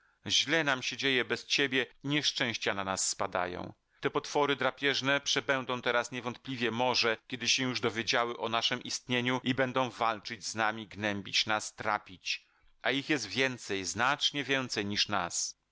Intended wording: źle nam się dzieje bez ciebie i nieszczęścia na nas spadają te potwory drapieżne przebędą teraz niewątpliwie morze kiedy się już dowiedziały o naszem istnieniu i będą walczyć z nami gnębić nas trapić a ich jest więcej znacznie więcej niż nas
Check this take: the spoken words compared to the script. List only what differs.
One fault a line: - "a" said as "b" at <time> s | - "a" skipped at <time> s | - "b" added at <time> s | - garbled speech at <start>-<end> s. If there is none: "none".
none